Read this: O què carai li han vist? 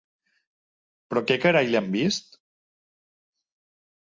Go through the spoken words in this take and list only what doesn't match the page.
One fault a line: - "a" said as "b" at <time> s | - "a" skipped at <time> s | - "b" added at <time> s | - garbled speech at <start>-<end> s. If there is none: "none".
- "O" said as "Però" at 1.1 s